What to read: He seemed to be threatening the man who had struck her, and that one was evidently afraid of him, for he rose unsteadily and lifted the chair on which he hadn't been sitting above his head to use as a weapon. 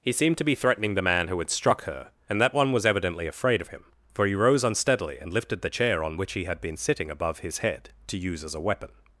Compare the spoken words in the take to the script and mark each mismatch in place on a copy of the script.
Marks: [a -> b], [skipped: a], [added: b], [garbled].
He seemed to be threatening the man who had struck her, and that one was evidently afraid of him, for he rose unsteadily and lifted the chair on which he [hadn't -> had] been sitting above his head to use as a weapon.